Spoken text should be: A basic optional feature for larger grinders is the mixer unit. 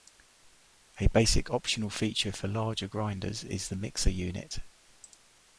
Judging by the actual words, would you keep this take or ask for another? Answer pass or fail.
pass